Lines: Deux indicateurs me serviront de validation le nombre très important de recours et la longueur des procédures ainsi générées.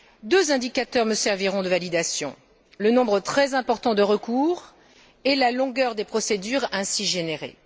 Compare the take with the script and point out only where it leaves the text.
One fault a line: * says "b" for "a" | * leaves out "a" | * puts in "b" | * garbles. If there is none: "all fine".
all fine